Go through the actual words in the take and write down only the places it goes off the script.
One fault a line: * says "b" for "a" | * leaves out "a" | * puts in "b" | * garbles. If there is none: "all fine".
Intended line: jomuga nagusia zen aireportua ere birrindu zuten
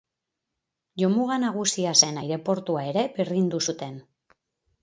all fine